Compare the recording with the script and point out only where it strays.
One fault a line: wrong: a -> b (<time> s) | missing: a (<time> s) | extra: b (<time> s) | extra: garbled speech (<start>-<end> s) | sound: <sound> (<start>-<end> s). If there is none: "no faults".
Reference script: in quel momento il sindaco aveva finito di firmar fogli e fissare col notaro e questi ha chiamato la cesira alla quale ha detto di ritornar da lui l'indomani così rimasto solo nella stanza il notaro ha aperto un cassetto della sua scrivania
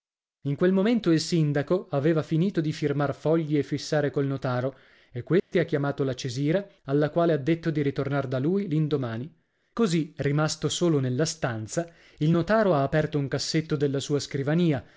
sound: dropout (5.4-5.5 s)